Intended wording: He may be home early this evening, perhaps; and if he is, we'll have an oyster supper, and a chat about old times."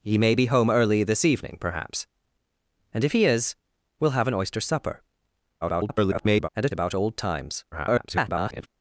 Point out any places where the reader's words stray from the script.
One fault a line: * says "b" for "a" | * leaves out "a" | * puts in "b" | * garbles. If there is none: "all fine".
* garbles
* leaves out "chat"
* garbles